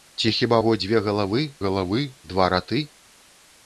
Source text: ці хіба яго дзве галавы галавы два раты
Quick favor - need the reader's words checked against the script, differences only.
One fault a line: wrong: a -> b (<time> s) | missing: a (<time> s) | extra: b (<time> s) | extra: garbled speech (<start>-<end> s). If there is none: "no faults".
no faults